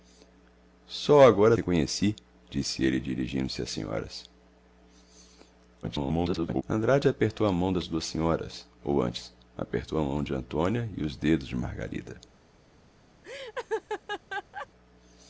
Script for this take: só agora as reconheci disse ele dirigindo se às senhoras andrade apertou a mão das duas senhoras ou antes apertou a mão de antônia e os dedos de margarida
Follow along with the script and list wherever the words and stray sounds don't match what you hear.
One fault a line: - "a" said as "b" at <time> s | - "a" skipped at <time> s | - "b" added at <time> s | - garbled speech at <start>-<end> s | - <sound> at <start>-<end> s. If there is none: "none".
- "as" skipped at 1.5 s
- garbled speech at 5.8-6.6 s
- laugh at 13.2-14.7 s